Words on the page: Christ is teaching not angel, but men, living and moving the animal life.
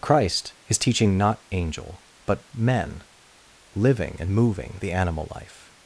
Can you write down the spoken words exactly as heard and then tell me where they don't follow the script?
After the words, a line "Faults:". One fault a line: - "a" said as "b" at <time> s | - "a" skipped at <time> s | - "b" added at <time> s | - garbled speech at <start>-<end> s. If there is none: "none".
Christ is teaching not angel, but men, living and moving the animal life.
Faults:
none